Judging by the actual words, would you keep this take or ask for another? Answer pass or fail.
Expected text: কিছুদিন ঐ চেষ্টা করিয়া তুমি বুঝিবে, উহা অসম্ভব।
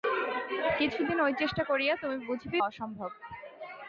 fail